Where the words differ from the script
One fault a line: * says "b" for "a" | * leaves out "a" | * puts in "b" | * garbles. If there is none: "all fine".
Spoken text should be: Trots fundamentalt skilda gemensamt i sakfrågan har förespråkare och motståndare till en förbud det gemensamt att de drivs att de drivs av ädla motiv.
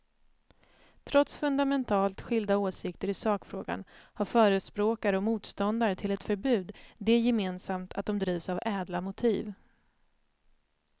* says "åsikter" for "gemensamt"
* says "ett" for "en"
* leaves out "att de drivs"